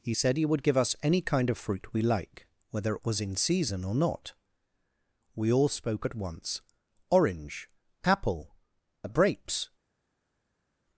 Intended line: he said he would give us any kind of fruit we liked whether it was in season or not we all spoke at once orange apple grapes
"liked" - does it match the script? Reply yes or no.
no